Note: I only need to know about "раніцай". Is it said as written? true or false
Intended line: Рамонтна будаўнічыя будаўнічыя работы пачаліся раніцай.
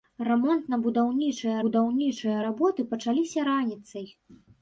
true